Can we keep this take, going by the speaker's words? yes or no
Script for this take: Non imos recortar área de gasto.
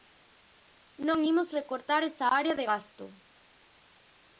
no